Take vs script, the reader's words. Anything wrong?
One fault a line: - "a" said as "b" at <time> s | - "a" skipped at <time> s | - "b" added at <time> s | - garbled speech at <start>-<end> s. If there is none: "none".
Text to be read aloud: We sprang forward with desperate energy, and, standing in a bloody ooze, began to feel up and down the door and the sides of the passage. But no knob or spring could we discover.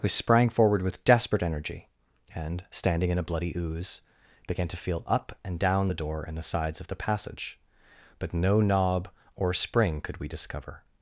none